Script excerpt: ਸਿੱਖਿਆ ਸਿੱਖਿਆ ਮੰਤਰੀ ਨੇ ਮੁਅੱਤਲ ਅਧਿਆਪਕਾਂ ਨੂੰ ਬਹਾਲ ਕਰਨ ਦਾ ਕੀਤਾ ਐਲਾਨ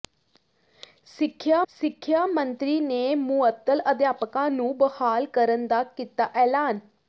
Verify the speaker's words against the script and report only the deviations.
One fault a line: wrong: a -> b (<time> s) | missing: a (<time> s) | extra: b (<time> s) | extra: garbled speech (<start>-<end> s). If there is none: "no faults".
no faults